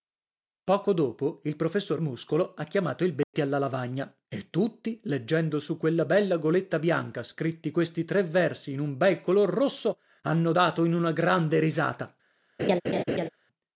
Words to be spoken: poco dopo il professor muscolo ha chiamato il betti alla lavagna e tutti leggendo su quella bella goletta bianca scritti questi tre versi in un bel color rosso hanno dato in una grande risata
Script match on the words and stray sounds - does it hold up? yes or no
no